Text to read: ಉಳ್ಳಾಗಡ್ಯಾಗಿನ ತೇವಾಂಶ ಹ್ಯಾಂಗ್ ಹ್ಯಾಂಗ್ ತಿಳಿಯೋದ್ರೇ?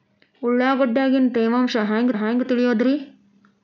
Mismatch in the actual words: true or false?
false